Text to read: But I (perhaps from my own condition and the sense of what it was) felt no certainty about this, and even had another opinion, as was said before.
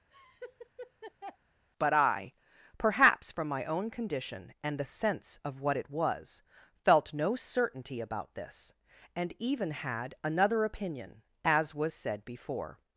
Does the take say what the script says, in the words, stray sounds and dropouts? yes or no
no